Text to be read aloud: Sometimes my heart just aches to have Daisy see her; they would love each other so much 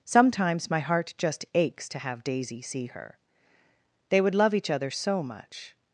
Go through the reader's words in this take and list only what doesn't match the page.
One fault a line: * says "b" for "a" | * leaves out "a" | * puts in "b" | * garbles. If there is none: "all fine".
all fine